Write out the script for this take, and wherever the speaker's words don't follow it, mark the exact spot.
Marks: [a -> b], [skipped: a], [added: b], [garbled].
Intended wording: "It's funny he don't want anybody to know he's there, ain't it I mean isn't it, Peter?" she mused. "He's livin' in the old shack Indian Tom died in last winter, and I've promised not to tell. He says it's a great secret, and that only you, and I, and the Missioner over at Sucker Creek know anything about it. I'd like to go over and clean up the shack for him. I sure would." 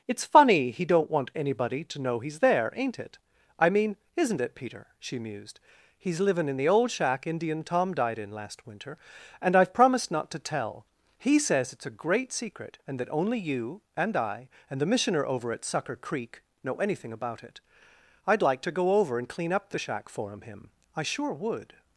"It's funny he don't want anybody to know he's there, ain't it I mean isn't it, Peter?" she mused. "He's livin' in the old shack Indian Tom died in last winter, and I've promised not to tell. He says it's a great secret, and that only you, and I, and the Missioner over at Sucker Creek know anything about it. I'd like to go over and clean up the shack for him. [added: him] I sure would."